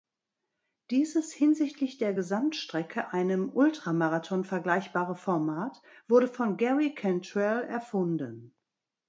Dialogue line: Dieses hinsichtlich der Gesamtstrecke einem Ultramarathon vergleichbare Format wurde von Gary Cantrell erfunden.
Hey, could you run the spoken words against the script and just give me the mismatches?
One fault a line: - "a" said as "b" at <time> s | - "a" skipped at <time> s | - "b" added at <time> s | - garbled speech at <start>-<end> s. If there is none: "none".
none